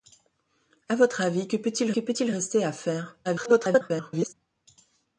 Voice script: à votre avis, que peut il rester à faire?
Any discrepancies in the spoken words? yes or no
yes